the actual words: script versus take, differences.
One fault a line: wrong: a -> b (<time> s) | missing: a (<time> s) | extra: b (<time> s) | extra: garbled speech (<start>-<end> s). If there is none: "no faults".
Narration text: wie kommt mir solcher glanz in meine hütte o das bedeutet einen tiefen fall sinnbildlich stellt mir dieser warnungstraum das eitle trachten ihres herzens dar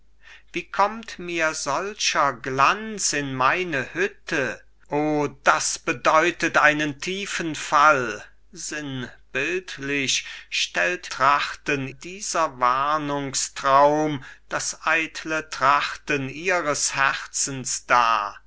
wrong: mir -> trachten (11.1 s)